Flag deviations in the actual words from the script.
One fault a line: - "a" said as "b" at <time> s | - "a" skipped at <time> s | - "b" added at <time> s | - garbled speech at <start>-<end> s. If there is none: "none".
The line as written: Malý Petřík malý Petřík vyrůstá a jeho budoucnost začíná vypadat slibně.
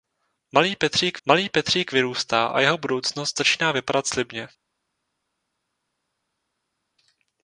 none